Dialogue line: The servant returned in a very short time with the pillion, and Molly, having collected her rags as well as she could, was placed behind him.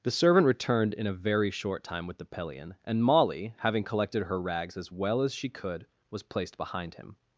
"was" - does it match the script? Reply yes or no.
yes